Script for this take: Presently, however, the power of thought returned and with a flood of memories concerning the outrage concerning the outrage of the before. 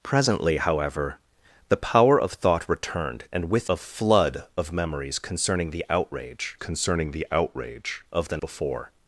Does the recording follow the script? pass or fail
pass